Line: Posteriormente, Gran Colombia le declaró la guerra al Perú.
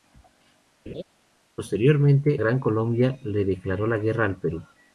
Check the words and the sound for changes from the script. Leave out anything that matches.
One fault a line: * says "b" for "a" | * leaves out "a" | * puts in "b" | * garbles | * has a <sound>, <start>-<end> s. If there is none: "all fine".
* has a laugh, 0.9-1.0 s